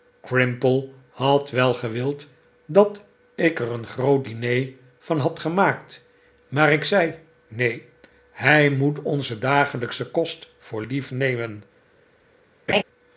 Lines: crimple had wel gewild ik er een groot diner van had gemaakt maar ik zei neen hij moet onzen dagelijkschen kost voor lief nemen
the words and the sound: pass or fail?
fail